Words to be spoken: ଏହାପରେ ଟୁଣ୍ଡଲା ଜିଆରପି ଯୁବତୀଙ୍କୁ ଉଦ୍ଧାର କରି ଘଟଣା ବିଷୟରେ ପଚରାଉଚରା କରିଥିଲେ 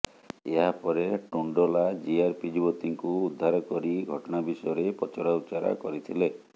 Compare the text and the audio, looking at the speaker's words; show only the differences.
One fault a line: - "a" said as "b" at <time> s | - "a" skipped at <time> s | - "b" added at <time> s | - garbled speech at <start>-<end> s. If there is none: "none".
none